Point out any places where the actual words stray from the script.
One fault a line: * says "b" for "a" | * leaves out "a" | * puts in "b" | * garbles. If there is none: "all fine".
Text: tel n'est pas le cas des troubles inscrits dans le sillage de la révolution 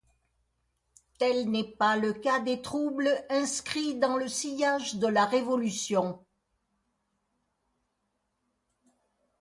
all fine